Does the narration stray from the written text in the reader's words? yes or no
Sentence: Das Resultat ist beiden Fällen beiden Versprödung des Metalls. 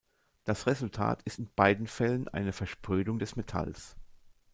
yes